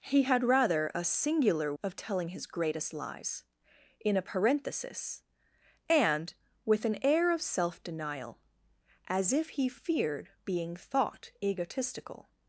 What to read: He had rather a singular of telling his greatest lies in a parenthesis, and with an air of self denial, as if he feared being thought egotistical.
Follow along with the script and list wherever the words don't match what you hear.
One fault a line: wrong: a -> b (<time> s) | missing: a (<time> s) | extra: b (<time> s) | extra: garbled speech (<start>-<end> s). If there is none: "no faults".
no faults